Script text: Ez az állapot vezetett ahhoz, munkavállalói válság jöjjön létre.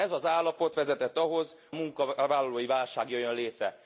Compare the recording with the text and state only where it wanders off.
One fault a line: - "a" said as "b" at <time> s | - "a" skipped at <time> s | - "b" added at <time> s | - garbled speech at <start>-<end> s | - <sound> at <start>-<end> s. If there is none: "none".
none